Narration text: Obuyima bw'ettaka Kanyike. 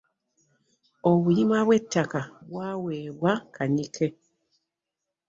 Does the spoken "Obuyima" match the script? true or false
true